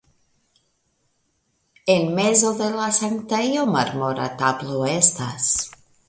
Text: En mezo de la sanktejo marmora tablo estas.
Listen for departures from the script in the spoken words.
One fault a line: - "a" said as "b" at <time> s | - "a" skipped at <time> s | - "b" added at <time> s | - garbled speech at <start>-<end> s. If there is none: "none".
none